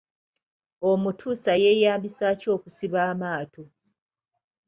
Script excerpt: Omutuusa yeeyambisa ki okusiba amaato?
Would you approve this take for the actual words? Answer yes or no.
yes